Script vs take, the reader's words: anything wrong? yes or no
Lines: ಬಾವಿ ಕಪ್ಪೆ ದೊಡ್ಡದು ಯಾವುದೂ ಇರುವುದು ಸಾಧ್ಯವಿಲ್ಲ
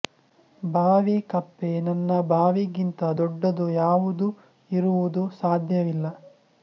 yes